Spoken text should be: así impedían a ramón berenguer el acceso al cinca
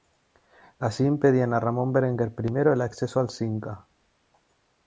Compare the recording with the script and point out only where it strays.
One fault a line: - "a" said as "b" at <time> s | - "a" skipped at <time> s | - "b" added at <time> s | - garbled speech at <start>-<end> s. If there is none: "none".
- "i" added at 2.4 s